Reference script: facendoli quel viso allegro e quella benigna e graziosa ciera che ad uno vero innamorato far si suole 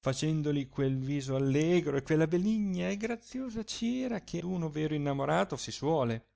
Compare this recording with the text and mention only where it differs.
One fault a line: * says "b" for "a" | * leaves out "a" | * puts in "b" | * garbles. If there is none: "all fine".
* leaves out "ad"
* leaves out "far"